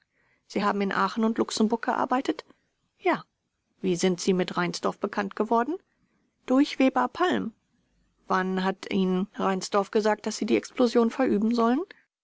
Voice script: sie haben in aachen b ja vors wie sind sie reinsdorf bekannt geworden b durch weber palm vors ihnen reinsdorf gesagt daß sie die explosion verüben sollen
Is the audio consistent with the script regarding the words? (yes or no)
no